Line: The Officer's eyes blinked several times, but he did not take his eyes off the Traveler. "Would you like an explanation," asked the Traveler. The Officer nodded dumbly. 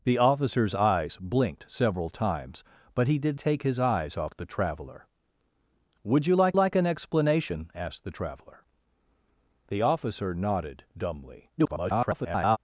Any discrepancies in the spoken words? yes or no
yes